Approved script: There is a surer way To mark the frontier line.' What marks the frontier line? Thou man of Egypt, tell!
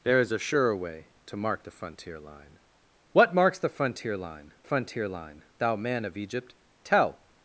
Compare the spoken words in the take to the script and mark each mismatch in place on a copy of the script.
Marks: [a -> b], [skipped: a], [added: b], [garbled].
There is a surer way To mark the frontier line.' What marks the frontier line? [added: frontier line] Thou man of Egypt, tell!